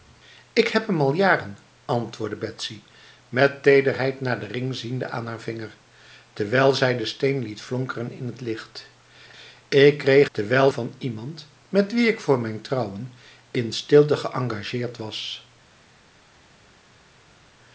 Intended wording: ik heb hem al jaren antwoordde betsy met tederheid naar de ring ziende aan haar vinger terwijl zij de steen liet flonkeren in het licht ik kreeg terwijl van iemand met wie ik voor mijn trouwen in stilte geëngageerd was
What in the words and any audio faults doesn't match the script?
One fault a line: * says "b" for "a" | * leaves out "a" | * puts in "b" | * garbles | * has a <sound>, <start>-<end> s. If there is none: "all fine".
all fine